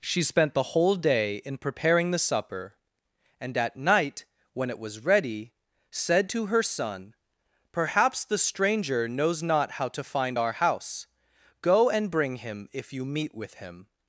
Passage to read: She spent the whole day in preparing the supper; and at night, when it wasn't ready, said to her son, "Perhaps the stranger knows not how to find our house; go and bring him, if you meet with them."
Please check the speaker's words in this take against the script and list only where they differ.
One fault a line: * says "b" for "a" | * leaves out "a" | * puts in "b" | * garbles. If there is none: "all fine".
* says "was" for "wasn't"
* says "him" for "them"